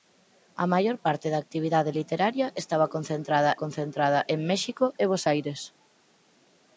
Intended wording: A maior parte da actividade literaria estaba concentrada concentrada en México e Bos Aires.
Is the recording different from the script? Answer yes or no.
no